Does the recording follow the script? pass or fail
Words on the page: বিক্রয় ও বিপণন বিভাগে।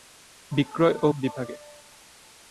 fail